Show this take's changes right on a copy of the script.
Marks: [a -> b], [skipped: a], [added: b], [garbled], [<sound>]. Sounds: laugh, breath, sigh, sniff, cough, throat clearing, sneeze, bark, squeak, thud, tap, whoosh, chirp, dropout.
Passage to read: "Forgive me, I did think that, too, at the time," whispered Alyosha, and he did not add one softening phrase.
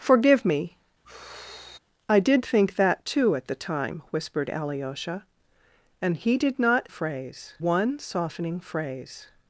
"Forgive me, [sigh] I did think that, too, at the time," whispered Alyosha, and he did not [add -> phrase] one softening phrase.